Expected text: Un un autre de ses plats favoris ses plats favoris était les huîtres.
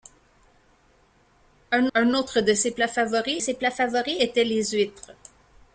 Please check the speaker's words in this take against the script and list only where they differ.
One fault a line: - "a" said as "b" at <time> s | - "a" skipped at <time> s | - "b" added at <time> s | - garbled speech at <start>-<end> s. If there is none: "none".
none